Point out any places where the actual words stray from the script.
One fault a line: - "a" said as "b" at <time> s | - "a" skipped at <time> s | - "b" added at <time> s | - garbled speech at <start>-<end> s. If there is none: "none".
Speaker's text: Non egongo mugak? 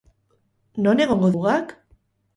none